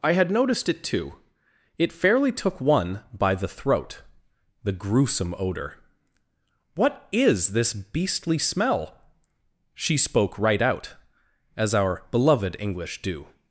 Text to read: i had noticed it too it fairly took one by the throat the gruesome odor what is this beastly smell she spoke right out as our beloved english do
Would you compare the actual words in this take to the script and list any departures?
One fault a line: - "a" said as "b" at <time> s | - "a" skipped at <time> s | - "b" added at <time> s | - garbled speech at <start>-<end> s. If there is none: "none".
none